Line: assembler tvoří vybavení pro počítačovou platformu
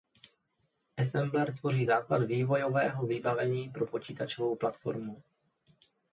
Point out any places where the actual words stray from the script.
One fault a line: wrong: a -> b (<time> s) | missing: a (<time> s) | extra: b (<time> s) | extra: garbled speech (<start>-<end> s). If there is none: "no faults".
extra: základ vývojového (1.8 s)